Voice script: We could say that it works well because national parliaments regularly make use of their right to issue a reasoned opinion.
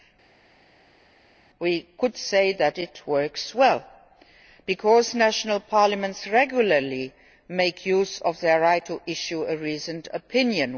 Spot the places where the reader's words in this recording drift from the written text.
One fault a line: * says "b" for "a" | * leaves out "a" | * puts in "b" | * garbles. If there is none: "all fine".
all fine